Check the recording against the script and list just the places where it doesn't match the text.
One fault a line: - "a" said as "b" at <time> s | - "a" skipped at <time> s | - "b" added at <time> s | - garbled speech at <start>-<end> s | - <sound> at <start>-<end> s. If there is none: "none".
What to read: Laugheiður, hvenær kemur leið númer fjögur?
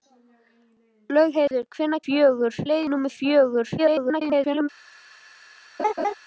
- dropout at 1.5-1.5 s
- "kemur" said as "fjögur" at 2.0 s
- garbled speech at 3.8-4.7 s
- laugh at 5.8-6.1 s